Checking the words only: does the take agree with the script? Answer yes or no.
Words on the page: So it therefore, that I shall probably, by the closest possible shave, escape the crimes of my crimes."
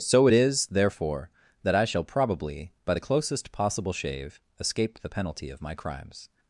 no